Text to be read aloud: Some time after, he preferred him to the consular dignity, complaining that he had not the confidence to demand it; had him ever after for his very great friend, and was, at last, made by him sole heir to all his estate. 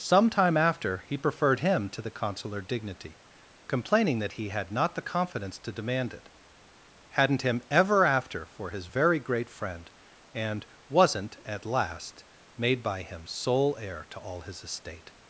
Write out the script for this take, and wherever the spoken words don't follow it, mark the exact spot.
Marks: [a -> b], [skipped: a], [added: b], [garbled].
Some time after, he preferred him to the consular dignity, complaining that he had not the confidence to demand it; [had -> hadn't] him ever after for his very great friend, and [was, -> wasn't] at last, made by him sole heir to all his estate.